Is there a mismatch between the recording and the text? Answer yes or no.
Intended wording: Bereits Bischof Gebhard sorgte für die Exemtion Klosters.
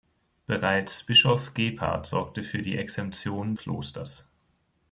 no